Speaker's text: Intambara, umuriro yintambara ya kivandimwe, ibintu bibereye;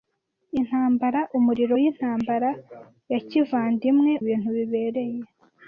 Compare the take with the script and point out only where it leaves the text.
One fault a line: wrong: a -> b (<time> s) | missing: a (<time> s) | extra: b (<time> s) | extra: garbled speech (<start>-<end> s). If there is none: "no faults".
no faults